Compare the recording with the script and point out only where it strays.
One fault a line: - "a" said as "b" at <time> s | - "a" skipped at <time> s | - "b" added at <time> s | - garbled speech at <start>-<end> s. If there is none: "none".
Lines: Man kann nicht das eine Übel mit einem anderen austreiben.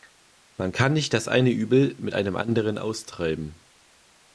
none